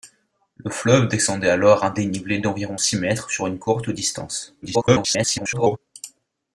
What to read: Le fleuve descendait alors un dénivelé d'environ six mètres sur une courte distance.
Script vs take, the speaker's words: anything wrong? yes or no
yes